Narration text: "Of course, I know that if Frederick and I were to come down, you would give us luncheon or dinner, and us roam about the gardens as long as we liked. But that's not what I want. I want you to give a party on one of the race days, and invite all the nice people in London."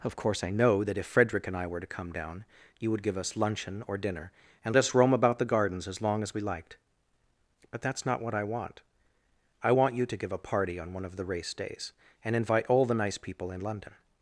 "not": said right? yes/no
yes